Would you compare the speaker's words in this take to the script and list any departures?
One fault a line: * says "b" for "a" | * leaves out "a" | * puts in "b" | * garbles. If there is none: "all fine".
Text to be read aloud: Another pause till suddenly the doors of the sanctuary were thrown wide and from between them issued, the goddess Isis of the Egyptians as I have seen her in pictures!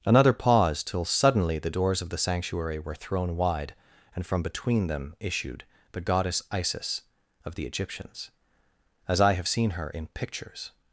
all fine